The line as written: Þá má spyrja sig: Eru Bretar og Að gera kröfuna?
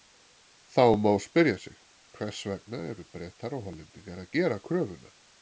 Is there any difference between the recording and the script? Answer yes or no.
yes